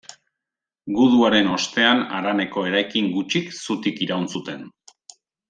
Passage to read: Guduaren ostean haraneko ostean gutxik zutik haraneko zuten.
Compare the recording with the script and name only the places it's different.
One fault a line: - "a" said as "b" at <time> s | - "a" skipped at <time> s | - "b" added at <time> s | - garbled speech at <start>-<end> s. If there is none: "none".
- "ostean" said as "eraikin" at 2.7 s
- "haraneko" said as "iraun" at 4.1 s